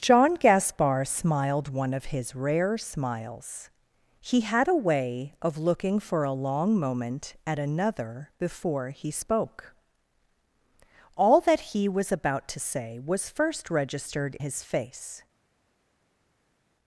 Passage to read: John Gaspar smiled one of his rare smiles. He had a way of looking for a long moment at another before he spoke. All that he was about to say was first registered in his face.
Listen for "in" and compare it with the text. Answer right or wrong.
wrong